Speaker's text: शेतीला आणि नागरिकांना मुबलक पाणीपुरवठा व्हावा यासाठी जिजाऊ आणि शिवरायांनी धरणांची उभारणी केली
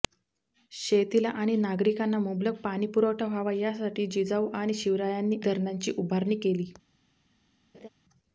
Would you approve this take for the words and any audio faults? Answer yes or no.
no